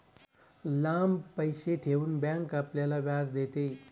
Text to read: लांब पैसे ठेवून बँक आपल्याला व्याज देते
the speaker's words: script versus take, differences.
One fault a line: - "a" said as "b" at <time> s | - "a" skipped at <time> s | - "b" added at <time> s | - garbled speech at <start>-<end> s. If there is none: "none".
none